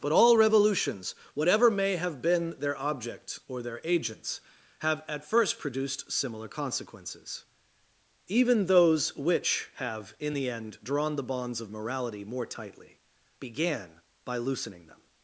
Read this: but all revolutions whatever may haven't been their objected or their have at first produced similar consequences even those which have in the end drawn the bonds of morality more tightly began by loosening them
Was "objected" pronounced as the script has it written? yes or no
no